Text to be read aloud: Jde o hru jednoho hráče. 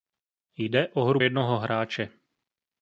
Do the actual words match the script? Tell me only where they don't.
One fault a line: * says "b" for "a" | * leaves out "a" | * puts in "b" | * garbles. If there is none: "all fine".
all fine